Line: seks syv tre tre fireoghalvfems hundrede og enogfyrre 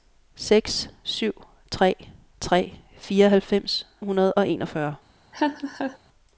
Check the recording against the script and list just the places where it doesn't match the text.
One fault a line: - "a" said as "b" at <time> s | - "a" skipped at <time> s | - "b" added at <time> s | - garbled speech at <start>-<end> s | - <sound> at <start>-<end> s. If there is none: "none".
- laugh at 5.3-6.0 s